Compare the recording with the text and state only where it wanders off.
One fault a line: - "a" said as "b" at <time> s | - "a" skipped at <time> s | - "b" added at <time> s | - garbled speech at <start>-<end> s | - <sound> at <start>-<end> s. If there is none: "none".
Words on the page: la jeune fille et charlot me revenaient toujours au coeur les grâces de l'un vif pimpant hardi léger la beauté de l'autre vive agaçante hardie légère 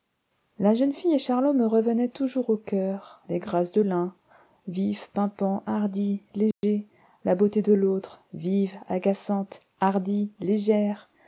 - dropout at 6.5-6.6 s